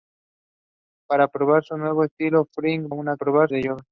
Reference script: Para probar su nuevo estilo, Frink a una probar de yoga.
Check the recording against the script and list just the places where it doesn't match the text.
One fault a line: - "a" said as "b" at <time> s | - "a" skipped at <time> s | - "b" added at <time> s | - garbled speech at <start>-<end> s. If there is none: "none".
none